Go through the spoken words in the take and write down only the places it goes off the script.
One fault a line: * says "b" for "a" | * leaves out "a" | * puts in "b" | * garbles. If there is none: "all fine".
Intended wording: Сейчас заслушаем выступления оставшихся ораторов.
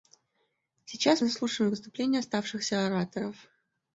all fine